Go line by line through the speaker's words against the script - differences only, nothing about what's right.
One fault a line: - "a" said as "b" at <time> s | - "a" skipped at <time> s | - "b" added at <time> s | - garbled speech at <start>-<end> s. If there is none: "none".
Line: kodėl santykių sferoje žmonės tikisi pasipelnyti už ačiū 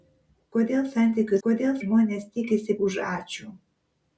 - "sferoje" said as "kodėl" at 1.5 s
- "pasipelnyti" skipped at 2.8 s